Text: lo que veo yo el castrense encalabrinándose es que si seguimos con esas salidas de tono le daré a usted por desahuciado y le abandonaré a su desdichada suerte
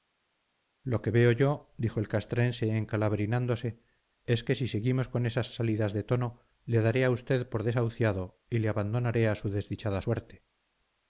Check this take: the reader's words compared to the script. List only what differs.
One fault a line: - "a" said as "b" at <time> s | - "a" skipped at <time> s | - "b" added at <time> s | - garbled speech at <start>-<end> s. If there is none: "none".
- "dijo" added at 1.8 s